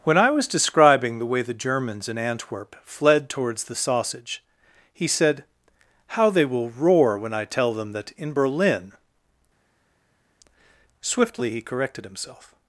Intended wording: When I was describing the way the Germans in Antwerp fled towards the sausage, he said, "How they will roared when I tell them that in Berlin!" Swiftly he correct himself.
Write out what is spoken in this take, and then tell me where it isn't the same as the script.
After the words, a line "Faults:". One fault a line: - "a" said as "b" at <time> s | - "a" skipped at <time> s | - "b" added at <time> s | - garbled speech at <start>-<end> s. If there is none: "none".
When I was describing the way the Germans in Antwerp fled towards the sausage, he said, "How they will roar when I tell them that in Berlin!" Swiftly he corrected himself.
Faults:
- "roared" said as "roar" at 6.7 s
- "correct" said as "corrected" at 11.6 s